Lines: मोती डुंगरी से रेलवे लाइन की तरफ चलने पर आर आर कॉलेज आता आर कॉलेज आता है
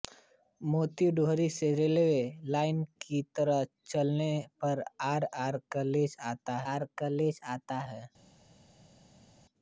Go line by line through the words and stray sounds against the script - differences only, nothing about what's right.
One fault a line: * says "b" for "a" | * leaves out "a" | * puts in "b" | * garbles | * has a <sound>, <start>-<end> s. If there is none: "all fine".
all fine